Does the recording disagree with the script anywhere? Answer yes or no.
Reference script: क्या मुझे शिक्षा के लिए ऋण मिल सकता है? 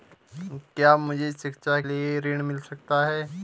yes